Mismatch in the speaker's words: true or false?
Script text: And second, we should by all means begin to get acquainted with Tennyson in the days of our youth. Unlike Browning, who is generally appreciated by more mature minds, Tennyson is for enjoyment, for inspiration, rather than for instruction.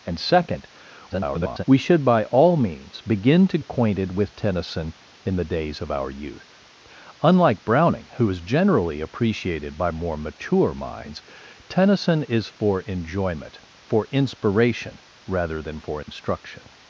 true